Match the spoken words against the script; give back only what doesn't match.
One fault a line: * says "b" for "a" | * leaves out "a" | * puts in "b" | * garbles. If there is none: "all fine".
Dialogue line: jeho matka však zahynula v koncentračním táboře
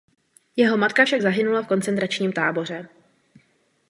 all fine